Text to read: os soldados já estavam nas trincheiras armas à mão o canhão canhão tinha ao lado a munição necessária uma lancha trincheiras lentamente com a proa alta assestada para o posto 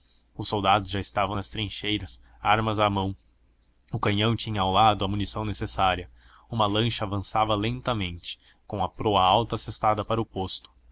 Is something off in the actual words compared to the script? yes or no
yes